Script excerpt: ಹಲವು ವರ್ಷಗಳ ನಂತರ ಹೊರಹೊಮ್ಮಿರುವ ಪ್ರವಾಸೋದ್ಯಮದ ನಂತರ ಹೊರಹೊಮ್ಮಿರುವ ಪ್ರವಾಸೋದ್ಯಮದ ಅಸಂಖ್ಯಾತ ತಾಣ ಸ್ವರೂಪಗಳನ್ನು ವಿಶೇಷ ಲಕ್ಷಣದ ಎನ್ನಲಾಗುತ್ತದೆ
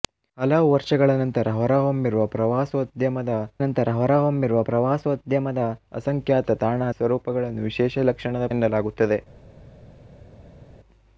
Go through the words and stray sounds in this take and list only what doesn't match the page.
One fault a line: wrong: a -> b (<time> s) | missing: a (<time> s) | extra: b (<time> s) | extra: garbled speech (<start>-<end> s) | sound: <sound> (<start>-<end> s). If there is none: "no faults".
no faults